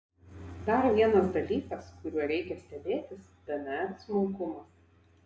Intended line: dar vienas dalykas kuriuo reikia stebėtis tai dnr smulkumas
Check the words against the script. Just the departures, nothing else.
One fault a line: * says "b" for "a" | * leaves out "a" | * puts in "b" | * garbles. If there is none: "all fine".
* leaves out "tai"